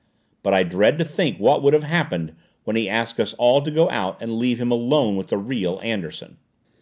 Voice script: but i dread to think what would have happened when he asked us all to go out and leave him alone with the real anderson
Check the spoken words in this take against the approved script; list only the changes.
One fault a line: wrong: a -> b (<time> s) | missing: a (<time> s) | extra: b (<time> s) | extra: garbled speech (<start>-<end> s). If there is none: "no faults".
no faults